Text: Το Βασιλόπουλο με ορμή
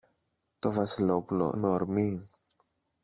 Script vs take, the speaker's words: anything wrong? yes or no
no